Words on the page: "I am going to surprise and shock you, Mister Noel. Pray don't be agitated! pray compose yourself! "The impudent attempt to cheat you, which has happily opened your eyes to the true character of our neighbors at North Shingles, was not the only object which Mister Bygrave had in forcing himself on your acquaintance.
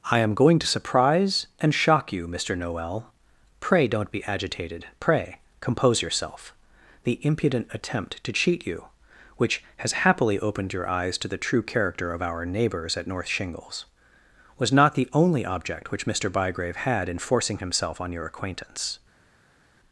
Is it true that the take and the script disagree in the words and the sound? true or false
false